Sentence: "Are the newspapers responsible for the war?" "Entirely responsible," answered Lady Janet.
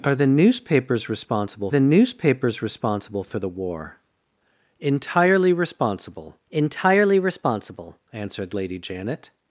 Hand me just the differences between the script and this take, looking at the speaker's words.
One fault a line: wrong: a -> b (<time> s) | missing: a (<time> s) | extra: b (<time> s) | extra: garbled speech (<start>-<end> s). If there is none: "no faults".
extra: the newspapers responsible (1.7 s)
extra: entirely responsible (6.5 s)